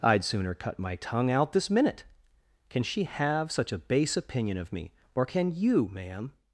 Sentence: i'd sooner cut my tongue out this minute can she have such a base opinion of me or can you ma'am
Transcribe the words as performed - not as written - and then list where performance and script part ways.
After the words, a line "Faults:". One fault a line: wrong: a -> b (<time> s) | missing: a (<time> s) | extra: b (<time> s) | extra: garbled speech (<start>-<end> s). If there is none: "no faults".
i'd sooner cut my tongue out this minute can she have such a base opinion of me or can you ma'am
Faults:
no faults